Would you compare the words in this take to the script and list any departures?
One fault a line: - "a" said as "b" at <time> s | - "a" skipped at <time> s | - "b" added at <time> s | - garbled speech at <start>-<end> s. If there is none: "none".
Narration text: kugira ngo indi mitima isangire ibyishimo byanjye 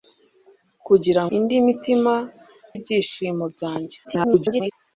- "ngo" skipped at 1.2 s
- "isangire" skipped at 2.1 s
- garbled speech at 4.0-4.7 s